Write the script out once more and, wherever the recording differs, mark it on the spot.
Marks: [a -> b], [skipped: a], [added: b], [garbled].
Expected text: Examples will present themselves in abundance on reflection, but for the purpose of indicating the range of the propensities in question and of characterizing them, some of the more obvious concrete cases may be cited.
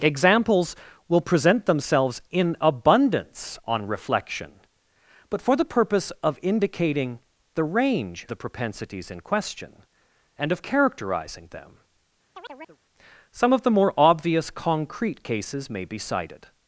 Examples will present themselves in abundance on reflection, but for the purpose of indicating the range [skipped: of] the propensities in question and of characterizing them, some of the more obvious concrete cases may be cited.